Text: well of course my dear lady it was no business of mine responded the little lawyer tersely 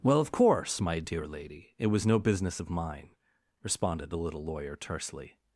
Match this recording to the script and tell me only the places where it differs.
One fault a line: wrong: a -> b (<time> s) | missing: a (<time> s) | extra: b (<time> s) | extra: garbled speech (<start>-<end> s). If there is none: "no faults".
no faults